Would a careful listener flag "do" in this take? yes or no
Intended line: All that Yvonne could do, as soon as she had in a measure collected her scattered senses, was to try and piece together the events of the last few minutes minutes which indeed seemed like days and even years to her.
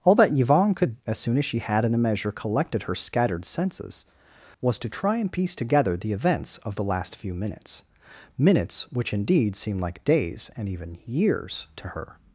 yes